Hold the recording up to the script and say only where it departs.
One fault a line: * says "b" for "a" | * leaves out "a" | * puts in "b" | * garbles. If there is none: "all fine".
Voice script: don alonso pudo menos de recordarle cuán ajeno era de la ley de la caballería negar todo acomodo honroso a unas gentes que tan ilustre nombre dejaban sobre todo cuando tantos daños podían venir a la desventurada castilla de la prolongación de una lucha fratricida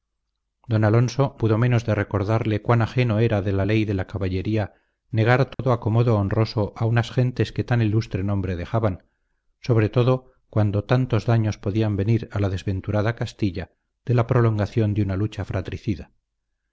all fine